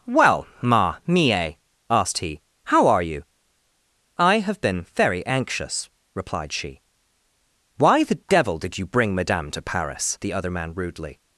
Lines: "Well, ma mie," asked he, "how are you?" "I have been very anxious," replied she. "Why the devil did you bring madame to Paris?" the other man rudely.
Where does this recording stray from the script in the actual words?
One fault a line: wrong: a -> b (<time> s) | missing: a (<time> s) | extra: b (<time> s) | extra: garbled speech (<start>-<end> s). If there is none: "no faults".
no faults